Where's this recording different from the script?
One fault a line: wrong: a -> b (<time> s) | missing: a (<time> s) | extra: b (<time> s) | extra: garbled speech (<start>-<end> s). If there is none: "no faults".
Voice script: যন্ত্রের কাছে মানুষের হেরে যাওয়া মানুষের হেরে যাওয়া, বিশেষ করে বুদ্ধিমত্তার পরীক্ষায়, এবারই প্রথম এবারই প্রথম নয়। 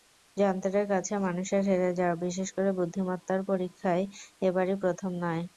missing: মানুষের হেরে যাওয়া (2.1 s)
missing: এবারই প্রথম (5.1 s)